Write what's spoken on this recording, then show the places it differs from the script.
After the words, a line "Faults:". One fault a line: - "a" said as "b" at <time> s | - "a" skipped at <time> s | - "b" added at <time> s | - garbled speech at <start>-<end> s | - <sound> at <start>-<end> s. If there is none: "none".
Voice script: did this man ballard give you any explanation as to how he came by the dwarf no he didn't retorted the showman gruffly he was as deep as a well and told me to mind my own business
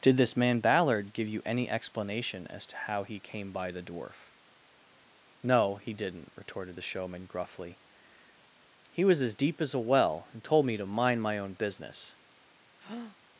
did this man ballard give you any explanation as to how he came by the dwarf no he didn't retorted the showman gruffly he was as deep as a well and told me to mind my own business
Faults:
- breath at 12.8-13.2 s